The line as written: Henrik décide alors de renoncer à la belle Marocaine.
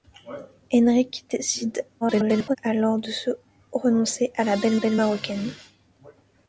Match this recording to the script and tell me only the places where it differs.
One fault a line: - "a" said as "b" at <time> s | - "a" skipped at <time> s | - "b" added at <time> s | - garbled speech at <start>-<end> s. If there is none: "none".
- garbled speech at 2.0-2.6 s
- "belle" added at 4.7 s